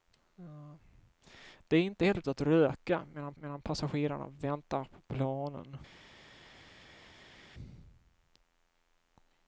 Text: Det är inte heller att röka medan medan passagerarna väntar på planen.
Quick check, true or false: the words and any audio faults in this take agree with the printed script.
true